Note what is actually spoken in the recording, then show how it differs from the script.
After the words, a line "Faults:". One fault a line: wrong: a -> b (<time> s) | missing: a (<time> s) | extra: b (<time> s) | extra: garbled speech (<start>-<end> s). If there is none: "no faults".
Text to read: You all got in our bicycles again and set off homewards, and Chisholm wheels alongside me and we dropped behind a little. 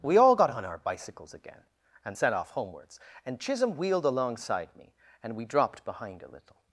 We all got on our bicycles again and set off homewards, and Chisholm wheeled alongside me and we dropped behind a little.
Faults:
wrong: You -> We (0.0 s)
wrong: in -> on (0.5 s)
wrong: wheels -> wheeled (3.8 s)